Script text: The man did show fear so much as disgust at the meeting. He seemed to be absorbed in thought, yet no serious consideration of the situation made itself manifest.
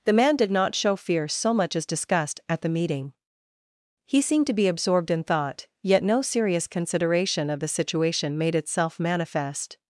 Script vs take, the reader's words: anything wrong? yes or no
yes